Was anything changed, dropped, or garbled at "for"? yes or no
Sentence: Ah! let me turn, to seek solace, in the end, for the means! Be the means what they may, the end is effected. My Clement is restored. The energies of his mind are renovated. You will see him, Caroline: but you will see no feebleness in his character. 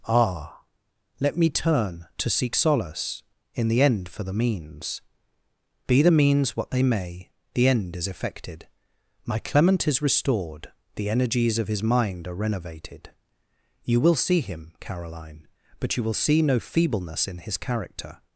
no